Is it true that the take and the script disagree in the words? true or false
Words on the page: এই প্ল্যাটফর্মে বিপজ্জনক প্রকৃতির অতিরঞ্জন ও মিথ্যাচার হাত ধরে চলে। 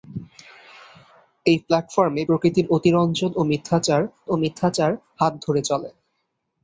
true